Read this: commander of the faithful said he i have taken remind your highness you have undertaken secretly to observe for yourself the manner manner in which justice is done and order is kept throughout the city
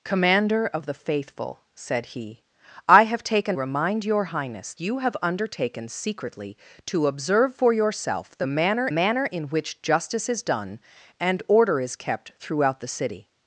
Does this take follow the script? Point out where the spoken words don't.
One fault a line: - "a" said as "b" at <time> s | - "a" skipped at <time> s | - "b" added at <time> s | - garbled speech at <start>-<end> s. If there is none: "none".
none